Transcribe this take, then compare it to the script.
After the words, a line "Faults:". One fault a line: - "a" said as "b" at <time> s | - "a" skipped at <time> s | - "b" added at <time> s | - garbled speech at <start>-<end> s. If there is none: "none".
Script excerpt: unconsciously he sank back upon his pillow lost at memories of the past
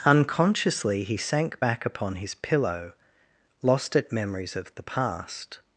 unconsciously he sank back upon his pillow lost at memories of the past
Faults:
none